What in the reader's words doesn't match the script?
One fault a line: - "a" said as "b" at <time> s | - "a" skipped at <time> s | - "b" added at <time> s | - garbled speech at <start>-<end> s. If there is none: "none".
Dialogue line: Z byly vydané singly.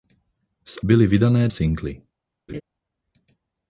none